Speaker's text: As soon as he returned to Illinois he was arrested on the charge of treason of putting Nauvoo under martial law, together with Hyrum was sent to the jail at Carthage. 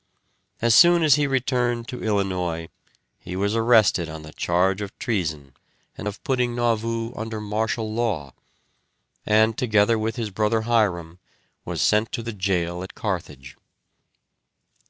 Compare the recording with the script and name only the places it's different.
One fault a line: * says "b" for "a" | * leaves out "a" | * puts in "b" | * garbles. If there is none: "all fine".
* puts in "and"
* puts in "and"
* puts in "his brother"